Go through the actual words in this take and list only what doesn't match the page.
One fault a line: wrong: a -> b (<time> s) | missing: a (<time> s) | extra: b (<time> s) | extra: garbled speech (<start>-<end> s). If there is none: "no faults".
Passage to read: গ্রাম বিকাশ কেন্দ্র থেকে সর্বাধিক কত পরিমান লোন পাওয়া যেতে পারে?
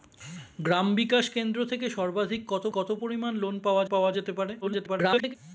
extra: কত (2.7 s)
extra: পাওয়া (3.9 s)
extra: garbled speech (4.6-5.3 s)